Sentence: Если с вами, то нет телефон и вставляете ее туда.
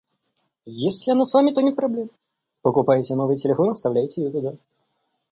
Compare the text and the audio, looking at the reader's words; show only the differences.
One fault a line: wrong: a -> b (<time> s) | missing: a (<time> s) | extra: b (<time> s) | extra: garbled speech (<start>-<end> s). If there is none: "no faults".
extra: она (1.1 s)
extra: проблем покупаете новый (1.8 s)